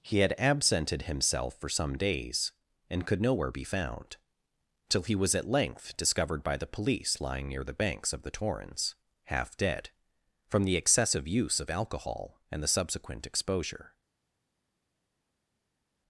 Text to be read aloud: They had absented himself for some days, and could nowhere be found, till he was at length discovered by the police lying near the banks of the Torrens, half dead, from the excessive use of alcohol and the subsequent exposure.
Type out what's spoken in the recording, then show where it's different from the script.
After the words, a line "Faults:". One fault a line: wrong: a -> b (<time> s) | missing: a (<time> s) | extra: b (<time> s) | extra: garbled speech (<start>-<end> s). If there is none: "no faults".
He had absented himself for some days, and could nowhere be found, till he was at length discovered by the police lying near the banks of the Torrens, half dead, from the excessive use of alcohol and the subsequent exposure.
Faults:
wrong: They -> He (0.0 s)